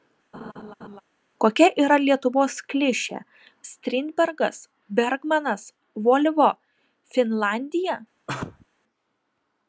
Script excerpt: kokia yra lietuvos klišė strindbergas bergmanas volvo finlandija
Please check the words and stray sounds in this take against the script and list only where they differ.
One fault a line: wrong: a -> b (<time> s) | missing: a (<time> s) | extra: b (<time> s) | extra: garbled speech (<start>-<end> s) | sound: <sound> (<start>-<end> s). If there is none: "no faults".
sound: laugh (0.3-1.0 s)
sound: sneeze (8.3-8.7 s)